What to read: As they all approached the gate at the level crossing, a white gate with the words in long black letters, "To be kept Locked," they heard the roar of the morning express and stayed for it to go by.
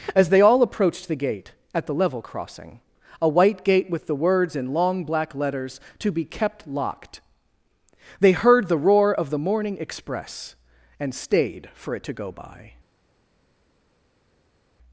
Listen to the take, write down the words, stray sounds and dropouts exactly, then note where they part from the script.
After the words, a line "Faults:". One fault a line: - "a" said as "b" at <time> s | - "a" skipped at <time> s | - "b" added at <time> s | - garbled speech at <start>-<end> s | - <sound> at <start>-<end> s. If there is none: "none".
As they all approached the gate at the level crossing, a white gate with the words in long black letters, "To be kept Locked," they heard the roar of the morning express and stayed for it to go by.
Faults:
none